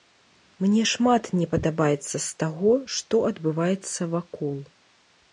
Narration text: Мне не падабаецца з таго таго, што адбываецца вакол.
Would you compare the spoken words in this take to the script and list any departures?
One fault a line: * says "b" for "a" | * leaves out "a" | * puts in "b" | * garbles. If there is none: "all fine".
* puts in "шмат"
* leaves out "таго"